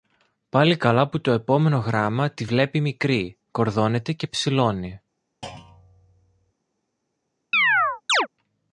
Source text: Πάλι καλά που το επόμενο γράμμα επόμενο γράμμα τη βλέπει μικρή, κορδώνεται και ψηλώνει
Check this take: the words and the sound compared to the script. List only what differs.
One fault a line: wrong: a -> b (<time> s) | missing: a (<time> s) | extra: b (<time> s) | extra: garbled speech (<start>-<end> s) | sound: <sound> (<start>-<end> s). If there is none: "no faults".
missing: επόμενο γράμμα (2.3 s)
sound: thud (5.4-6.5 s)
sound: chirp (7.5-8.3 s)